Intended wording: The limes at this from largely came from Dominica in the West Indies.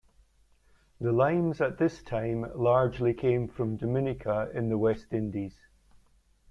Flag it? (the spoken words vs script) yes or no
yes